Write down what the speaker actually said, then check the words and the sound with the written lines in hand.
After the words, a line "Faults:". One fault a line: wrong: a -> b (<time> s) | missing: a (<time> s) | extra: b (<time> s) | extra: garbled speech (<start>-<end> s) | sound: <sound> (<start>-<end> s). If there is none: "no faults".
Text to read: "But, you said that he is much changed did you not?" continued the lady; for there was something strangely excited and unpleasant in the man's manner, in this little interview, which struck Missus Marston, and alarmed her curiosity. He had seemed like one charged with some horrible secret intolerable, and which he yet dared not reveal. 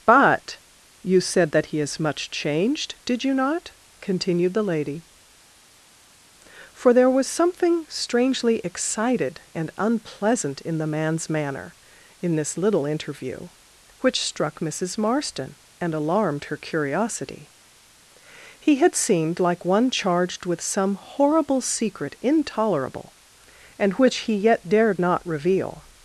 "But, you said that he is much changed did you not?" continued the lady; for there was something strangely excited and unpleasant in the man's manner, in this little interview, which struck Missus Marston, and alarmed her curiosity. He had seemed like one charged with some horrible secret intolerable, and which he yet dared not reveal.
Faults:
no faults